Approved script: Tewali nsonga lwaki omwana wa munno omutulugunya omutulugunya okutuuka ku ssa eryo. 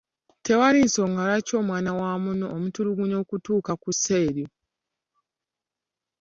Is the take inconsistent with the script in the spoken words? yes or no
yes